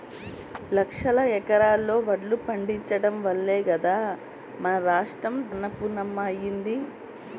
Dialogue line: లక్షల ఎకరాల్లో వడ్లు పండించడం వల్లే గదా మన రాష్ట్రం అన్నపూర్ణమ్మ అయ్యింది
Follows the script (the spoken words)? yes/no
yes